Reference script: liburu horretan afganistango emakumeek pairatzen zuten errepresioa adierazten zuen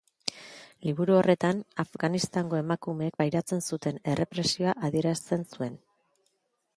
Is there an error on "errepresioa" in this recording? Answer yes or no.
no